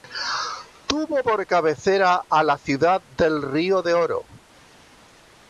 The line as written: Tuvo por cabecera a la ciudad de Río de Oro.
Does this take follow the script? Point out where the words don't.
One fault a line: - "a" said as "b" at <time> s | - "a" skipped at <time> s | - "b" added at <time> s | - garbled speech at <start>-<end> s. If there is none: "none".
none